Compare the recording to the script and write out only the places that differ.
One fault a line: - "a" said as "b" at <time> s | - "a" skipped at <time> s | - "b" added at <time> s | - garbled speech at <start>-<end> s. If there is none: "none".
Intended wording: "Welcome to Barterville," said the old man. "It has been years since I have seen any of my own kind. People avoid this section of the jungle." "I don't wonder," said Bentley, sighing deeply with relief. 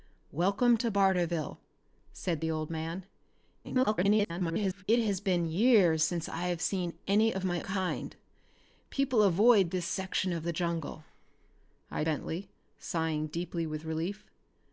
- garbled speech at 3.6-4.8 s
- "own" skipped at 7.6 s
- "don't wonder said" skipped at 12.0 s